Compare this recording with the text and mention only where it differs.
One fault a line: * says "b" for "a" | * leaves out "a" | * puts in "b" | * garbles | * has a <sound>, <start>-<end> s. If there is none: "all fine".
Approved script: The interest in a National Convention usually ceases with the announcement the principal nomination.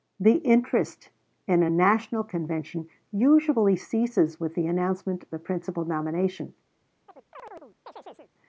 * has a chirp, 7.1-8.3 s